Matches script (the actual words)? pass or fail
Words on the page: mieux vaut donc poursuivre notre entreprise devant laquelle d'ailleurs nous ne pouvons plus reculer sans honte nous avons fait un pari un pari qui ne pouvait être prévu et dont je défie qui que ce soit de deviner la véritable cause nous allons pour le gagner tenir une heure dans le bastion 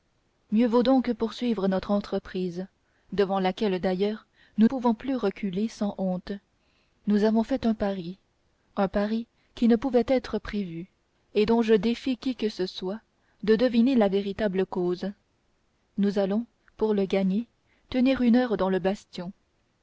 fail